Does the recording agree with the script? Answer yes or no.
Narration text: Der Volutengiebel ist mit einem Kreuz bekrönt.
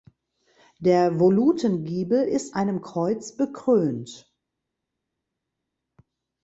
no